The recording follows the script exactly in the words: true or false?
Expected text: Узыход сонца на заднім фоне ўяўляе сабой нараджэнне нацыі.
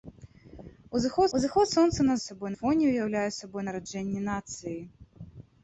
false